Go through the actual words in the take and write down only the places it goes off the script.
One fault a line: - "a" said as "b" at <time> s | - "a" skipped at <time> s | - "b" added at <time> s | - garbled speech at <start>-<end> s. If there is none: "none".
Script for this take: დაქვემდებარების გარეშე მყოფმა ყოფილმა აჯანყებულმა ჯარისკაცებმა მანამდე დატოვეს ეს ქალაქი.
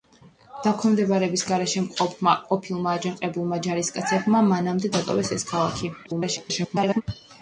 - garbled speech at 6.0-7.0 s